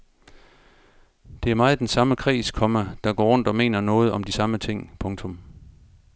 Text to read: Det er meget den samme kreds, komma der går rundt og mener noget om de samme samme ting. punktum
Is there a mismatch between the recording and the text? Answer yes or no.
yes